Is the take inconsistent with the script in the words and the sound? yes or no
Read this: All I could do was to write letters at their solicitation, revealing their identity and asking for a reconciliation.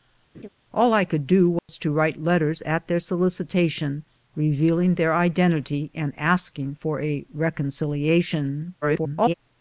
yes